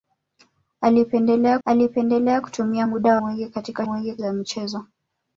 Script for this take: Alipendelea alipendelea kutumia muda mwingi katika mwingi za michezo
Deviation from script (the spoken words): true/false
false